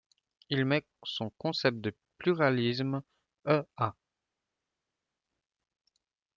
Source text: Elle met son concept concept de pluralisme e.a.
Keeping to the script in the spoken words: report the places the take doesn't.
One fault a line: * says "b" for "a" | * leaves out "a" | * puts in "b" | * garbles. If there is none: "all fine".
* says "Il" for "Elle"
* leaves out "concept"